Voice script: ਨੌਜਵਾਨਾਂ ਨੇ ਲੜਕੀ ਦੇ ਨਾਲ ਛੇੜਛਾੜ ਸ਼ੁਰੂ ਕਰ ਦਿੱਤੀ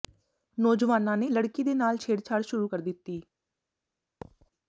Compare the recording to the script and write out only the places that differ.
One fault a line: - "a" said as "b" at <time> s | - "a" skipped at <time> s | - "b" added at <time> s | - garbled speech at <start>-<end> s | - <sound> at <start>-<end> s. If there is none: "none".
- thud at 4.2-4.5 s